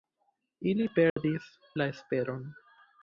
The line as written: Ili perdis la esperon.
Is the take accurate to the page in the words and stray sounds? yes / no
no